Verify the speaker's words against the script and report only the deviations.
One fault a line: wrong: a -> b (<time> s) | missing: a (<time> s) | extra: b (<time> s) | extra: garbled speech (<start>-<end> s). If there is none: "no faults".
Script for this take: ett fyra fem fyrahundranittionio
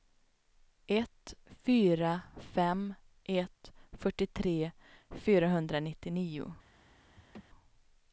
extra: ett fyrtiotre (3.2 s)